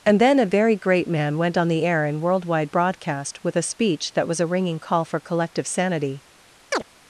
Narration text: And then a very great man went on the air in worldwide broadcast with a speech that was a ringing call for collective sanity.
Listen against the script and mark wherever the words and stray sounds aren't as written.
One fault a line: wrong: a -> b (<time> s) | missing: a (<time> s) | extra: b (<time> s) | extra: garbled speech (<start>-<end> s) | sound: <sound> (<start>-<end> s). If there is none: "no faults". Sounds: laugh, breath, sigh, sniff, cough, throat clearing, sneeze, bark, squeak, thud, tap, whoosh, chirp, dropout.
sound: chirp (6.7-6.8 s)